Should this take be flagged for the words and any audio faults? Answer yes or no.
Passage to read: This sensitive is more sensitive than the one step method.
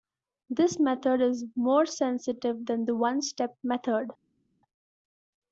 yes